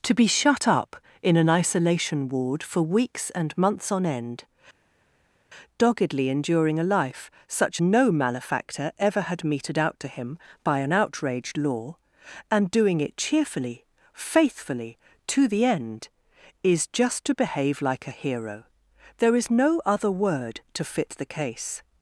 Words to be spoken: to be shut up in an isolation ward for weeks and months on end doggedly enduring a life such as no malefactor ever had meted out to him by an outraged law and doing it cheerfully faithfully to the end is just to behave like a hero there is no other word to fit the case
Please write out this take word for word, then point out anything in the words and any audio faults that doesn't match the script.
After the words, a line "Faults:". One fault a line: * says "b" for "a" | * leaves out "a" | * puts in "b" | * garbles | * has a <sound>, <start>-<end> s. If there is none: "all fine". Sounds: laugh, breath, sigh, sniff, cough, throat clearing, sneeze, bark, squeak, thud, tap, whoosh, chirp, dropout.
to be shut up in an isolation ward for weeks and months on end doggedly enduring a life such no malefactor ever had meted out to him by an outraged law and doing it cheerfully faithfully to the end is just to behave like a hero there is no other word to fit the case
Faults:
* leaves out "as"